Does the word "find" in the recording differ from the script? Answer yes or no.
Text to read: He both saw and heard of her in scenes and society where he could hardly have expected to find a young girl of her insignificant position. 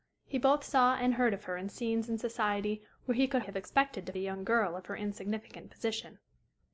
yes